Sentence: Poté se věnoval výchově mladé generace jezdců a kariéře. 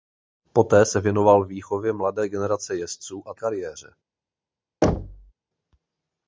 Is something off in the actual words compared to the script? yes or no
no